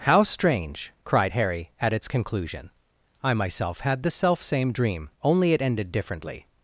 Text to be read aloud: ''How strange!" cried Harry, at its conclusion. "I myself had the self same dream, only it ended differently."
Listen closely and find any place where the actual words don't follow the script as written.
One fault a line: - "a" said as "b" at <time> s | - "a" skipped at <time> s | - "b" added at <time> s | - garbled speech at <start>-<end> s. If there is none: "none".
none